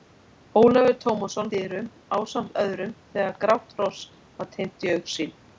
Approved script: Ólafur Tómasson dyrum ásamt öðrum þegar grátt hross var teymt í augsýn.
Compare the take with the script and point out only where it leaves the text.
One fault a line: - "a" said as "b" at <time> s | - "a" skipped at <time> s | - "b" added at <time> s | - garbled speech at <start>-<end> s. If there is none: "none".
none